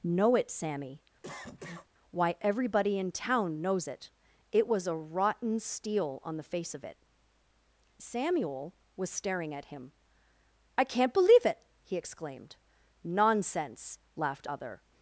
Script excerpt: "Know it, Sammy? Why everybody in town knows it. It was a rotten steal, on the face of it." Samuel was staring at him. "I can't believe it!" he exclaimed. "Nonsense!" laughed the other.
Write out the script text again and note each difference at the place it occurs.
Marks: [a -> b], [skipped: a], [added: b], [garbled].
"Know it, Sammy? Why everybody in town knows it. It was a rotten steal, on the face of it." Samuel was staring at him. "I can't believe it!" he exclaimed. "Nonsense!" laughed [skipped: the] other.